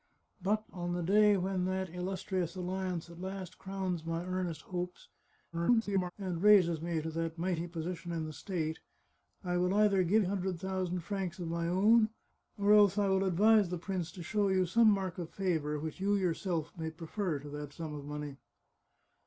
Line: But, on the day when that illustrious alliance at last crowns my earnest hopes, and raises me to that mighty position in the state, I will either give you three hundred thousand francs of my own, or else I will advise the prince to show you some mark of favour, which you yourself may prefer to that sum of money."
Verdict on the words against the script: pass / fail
fail